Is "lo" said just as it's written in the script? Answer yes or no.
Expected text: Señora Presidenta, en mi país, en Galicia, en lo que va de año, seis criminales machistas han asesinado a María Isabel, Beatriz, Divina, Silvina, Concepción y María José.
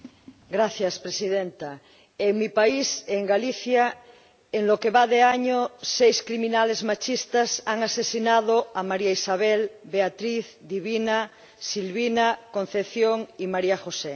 yes